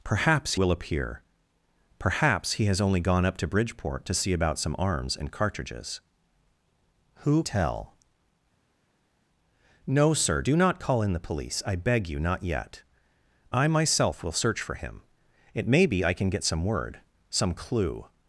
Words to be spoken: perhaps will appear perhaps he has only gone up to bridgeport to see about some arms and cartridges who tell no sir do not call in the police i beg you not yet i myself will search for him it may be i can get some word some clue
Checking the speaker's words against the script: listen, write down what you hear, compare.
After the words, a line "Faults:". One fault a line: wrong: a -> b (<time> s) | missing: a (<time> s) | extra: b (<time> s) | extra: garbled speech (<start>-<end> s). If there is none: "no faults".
perhaps will appear perhaps he has only gone up to bridgeport to see about some arms and cartridges who tell no sir do not call in the police i beg you not yet i myself will search for him it may be i can get some word some clue
Faults:
no faults